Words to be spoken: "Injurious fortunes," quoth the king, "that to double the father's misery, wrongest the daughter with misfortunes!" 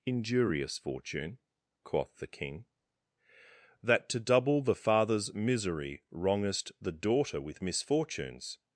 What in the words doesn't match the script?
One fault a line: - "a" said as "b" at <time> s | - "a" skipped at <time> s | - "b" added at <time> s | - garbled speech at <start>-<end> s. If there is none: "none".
- "fortunes" said as "fortune" at 0.8 s